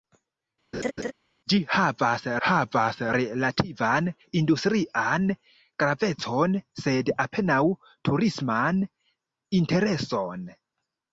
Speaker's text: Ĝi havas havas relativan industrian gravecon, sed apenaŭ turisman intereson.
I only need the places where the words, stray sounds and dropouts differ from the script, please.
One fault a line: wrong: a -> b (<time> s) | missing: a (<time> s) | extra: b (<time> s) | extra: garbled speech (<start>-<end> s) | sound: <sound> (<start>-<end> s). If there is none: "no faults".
sound: laugh (0.7-1.1 s)